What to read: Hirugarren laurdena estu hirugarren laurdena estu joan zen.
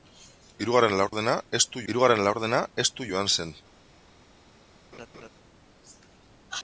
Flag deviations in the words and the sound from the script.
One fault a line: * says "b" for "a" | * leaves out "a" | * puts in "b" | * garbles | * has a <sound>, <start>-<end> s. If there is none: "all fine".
* has a dropout, 1.1-1.1 s
* has a laugh, 4.9-5.3 s